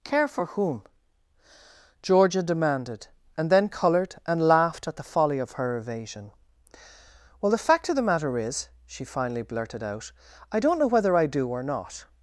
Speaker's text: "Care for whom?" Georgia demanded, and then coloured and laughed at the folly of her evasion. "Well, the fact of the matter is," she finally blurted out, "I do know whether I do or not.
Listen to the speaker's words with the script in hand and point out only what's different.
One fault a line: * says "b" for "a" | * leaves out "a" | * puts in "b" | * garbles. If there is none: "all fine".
* says "don't" for "do"